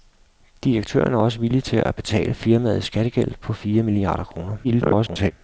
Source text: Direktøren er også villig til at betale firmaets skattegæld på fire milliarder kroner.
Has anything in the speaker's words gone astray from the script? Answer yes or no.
yes